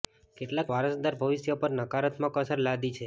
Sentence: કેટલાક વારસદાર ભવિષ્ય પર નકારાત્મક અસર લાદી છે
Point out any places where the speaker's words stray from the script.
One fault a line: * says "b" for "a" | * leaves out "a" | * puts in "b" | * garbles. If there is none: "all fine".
all fine